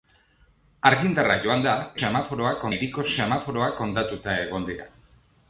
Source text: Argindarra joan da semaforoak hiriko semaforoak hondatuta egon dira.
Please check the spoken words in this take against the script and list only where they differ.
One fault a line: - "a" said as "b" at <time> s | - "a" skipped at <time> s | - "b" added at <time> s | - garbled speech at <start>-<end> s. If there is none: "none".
none